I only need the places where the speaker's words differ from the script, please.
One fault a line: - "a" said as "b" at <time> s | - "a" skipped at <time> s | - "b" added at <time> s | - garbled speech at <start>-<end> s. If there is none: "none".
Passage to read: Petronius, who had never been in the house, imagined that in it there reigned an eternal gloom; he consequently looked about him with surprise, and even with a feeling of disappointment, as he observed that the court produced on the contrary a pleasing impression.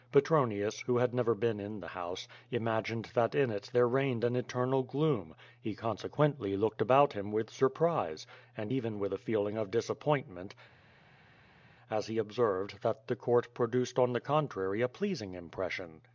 none